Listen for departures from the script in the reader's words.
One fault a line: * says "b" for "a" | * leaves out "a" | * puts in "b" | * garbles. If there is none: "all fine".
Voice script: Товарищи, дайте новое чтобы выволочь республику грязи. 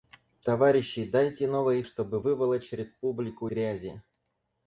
all fine